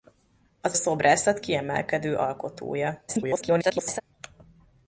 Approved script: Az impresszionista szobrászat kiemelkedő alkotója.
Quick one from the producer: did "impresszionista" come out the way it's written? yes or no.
no